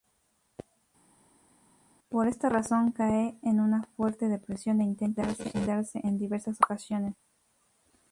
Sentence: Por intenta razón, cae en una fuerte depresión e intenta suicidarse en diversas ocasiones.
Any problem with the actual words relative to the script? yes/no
yes